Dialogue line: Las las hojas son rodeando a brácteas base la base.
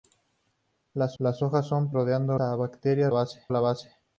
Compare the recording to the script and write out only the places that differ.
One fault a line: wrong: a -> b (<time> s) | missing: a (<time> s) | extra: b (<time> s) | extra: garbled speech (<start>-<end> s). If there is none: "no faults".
no faults